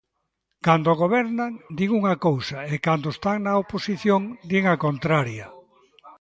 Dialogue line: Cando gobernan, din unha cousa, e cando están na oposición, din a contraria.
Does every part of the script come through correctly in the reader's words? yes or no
yes